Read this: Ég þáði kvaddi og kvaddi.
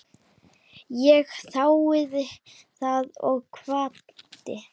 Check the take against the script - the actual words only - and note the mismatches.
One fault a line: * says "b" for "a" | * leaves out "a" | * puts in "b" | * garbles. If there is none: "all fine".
* says "það" for "kvaddi"